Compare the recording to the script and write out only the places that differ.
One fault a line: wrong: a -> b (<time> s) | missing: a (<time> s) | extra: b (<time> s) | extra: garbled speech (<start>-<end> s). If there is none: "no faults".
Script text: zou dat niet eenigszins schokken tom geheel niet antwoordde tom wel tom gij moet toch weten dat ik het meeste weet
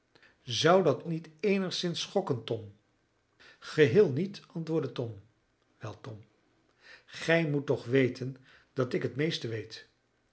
no faults